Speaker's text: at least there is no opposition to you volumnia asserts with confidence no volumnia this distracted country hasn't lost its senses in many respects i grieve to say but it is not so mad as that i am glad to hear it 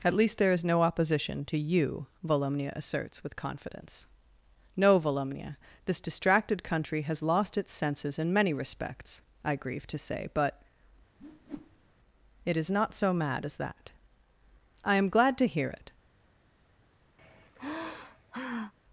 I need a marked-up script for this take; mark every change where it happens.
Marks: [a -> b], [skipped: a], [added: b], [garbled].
at least there is no opposition to you volumnia asserts with confidence no volumnia this distracted country [hasn't -> has] lost its senses in many respects i grieve to say but it is not so mad as that i am glad to hear it